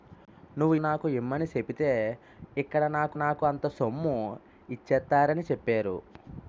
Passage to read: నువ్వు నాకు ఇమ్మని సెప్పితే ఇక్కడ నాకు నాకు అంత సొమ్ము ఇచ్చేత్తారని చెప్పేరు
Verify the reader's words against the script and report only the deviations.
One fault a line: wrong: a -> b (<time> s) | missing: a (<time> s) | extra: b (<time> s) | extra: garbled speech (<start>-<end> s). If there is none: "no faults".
no faults